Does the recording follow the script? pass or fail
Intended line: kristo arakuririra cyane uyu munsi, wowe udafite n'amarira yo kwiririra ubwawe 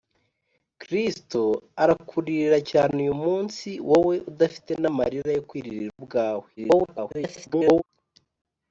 fail